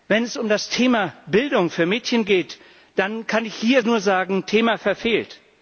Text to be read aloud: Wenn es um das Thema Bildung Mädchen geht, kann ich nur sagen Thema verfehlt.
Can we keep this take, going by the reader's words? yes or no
no